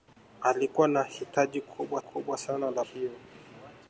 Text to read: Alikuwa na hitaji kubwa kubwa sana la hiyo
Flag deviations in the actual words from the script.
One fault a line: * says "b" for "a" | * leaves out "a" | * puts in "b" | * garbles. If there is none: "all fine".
all fine